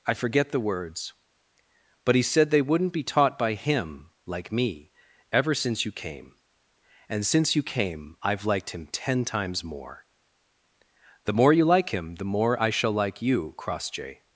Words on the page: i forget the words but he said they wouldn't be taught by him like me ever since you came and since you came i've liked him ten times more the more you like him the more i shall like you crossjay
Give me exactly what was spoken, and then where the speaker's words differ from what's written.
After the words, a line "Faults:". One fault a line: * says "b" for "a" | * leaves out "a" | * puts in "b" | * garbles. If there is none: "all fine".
i forget the words but he said they wouldn't be taught by him like me ever since you came and since you came i've liked him ten times more the more you like him the more i shall like you crossjay
Faults:
all fine